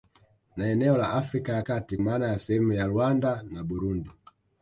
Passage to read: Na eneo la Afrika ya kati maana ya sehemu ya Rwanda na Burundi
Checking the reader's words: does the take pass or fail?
pass